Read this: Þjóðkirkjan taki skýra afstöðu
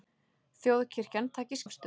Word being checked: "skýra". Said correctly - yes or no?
no